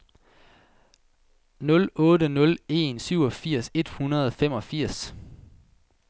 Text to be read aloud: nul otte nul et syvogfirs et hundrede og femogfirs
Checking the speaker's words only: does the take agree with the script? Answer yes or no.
no